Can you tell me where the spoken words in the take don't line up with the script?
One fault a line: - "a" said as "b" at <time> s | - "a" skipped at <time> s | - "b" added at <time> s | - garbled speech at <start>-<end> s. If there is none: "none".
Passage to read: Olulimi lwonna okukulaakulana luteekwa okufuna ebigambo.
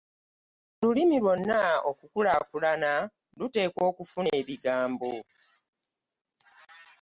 none